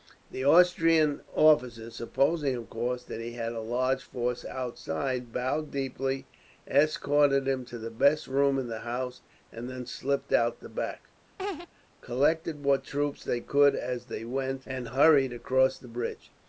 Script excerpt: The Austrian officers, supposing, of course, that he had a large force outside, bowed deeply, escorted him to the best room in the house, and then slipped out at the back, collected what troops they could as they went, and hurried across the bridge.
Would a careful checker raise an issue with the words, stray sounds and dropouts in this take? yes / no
yes